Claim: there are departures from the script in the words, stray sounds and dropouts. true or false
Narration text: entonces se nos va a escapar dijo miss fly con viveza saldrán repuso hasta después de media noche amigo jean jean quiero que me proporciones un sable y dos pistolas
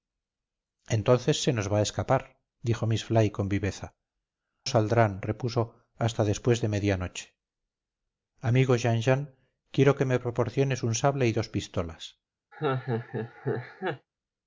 true